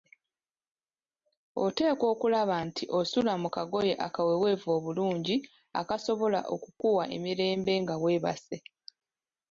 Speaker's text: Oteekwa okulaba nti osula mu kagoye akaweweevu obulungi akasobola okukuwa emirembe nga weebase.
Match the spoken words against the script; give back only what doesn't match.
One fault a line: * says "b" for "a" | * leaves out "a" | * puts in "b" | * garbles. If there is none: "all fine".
all fine